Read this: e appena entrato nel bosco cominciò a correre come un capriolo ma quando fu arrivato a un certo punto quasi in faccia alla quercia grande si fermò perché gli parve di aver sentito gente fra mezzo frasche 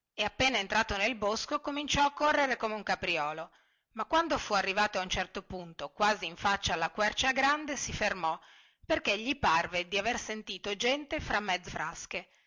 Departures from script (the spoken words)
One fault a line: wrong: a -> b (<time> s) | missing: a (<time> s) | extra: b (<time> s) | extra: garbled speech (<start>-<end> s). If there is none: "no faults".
no faults